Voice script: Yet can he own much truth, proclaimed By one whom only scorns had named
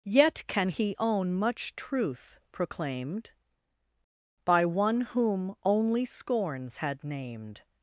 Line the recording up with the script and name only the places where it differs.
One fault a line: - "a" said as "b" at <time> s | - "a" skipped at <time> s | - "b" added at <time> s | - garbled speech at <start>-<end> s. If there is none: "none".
none